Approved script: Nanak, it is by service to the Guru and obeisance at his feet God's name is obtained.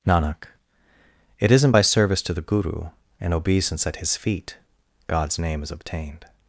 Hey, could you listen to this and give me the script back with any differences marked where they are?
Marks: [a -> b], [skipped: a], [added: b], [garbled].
Nanak, it [is -> isn't] by service to the Guru and obeisance at his feet God's name is obtained.